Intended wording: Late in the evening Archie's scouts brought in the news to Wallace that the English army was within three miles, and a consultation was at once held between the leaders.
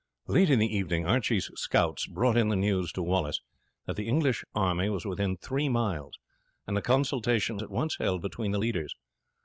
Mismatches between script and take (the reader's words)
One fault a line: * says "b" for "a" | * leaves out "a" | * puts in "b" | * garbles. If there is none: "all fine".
* leaves out "was"